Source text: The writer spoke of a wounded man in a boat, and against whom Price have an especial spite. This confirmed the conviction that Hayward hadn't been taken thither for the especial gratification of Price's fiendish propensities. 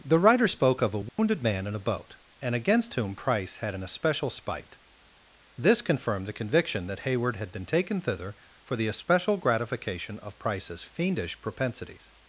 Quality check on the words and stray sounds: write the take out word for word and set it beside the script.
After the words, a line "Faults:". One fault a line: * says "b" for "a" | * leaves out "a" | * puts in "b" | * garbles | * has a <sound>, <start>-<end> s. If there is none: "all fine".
The writer spoke of a wounded man in a boat, and against whom Price had an especial spite. This confirmed the conviction that Hayward had been taken thither for the especial gratification of Price's fiendish propensities.
Faults:
* has a dropout, 1.1-1.2 s
* says "had" for "have"
* says "had" for "hadn't"